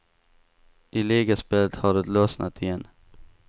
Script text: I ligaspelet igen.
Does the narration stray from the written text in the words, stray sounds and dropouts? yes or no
yes